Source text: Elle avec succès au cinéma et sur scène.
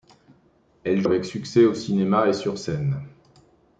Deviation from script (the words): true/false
false